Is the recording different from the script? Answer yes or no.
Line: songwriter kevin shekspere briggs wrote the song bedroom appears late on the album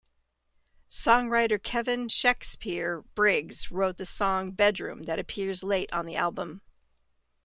yes